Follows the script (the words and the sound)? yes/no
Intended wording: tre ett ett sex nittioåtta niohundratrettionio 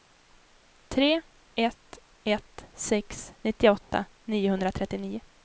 yes